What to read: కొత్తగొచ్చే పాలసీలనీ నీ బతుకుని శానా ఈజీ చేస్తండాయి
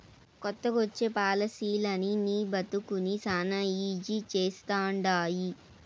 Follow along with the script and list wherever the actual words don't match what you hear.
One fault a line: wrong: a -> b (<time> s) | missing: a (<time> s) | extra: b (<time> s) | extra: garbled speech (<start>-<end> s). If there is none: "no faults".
no faults